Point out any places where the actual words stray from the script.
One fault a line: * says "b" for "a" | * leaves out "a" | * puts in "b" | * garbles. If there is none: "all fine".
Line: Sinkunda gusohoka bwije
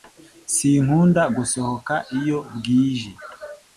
* puts in "iyo"